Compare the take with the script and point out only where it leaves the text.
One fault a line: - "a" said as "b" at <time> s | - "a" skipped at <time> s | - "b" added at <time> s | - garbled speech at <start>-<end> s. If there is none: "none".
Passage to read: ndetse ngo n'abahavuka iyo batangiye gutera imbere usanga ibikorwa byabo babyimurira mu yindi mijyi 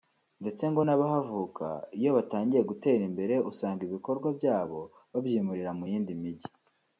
none